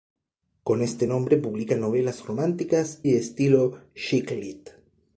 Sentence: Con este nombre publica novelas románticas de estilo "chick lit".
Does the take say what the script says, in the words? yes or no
yes